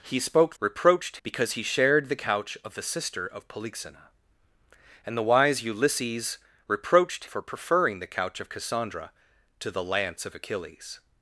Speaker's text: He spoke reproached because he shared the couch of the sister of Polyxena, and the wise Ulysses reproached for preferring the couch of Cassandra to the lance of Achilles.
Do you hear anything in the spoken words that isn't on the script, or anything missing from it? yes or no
no